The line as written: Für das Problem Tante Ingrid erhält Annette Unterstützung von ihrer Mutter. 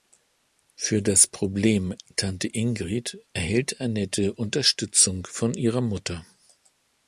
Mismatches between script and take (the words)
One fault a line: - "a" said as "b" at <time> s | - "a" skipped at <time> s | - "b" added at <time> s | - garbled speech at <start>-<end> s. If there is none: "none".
none